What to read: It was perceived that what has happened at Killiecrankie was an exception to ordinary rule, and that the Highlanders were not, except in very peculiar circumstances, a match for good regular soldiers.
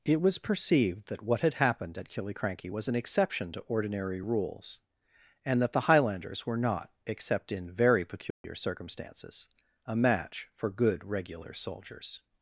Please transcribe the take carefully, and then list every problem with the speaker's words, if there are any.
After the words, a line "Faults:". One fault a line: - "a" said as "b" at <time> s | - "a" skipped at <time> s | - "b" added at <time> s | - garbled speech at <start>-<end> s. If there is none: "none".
It was perceived that what had happened at Killiecrankie was an exception to ordinary rules, and that the Highlanders were not, except in very peculiar circumstances, a match for good regular soldiers.
Faults:
- "has" said as "had" at 1.4 s
- "rule" said as "rules" at 4.2 s